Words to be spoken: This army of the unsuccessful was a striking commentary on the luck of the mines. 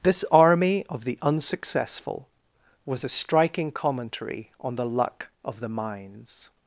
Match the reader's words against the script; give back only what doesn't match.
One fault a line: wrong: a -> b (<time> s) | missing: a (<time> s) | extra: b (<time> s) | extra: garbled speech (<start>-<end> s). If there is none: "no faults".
no faults